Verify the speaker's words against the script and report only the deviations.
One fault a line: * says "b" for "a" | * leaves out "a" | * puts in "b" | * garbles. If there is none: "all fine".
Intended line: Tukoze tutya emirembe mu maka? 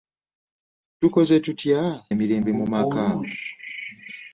all fine